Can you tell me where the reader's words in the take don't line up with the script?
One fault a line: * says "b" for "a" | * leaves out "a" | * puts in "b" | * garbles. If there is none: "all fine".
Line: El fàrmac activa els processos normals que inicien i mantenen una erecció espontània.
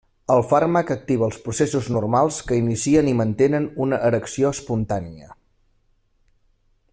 all fine